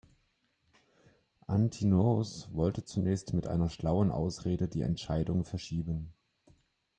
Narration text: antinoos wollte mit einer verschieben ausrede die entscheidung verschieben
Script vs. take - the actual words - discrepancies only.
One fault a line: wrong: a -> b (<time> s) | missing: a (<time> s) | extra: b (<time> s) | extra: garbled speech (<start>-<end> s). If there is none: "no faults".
extra: zunächst (2.8 s)
wrong: verschieben -> schlauen (3.7 s)